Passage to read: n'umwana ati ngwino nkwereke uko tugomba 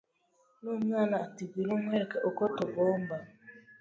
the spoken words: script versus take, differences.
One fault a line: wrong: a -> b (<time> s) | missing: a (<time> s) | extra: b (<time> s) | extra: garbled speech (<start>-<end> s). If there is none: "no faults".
no faults